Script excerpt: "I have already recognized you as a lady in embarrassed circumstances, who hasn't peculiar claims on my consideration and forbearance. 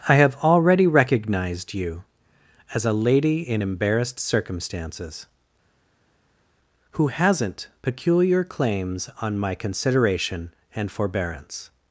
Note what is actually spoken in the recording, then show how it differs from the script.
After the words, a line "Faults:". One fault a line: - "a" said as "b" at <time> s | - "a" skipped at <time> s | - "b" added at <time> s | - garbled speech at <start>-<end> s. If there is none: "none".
"I have already recognized you as a lady in embarrassed circumstances, who hasn't peculiar claims on my consideration and forbearance.
Faults:
none